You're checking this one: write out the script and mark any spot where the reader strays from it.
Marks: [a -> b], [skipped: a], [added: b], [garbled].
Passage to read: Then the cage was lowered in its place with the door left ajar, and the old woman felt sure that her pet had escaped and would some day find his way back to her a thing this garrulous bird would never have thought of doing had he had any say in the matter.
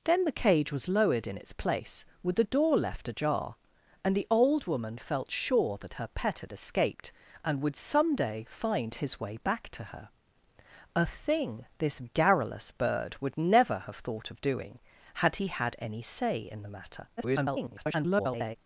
Then the cage was lowered in its place with the door left ajar, and the old woman felt sure that her pet had escaped and would some day find his way back to her a thing this garrulous bird would never have thought of doing had he had any say in the matter. [garbled]